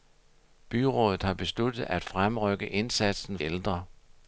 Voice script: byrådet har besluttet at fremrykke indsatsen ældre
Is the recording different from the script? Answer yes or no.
no